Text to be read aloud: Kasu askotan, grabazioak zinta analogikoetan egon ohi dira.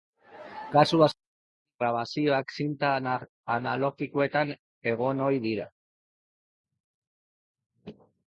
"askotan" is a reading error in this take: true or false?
false